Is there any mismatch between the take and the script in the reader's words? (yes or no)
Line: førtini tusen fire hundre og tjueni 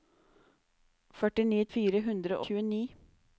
yes